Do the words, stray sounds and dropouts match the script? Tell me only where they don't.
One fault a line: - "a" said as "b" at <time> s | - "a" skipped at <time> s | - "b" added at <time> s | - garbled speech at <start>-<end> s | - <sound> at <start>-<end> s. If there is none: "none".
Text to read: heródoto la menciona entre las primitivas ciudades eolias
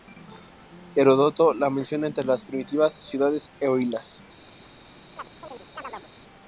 - chirp at 5.2-6.1 s